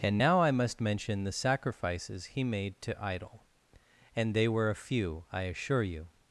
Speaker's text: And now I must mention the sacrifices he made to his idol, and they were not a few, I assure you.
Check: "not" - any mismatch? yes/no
yes